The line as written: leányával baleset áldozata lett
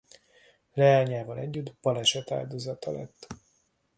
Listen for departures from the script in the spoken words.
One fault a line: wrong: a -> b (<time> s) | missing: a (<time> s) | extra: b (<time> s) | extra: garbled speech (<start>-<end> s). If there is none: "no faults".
extra: együtt (1.4 s)